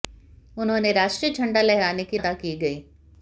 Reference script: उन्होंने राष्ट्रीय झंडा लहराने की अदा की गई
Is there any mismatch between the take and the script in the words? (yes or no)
no